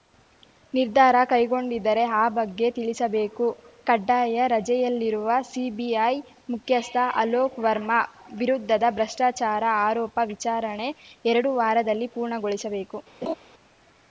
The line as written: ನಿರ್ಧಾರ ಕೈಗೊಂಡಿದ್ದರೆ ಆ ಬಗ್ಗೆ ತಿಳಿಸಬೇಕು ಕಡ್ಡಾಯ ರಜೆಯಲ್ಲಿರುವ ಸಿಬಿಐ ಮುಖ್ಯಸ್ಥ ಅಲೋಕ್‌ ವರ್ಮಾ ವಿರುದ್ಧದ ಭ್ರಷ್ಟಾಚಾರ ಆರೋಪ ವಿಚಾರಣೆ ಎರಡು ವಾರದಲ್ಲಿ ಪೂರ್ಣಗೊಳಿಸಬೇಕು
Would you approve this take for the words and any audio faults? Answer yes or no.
no